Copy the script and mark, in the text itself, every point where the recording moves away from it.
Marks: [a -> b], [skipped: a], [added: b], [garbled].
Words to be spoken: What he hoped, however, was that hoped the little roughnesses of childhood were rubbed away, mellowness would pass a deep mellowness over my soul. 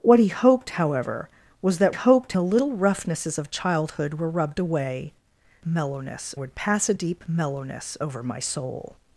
What he hoped, however, was that hoped the little roughnesses of childhood were rubbed away, mellowness would pass a deep mellowness over my soul.